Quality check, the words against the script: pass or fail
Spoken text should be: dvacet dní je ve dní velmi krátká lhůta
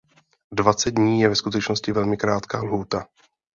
fail